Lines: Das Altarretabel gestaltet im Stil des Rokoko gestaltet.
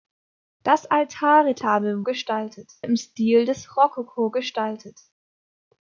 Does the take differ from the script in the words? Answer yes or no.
no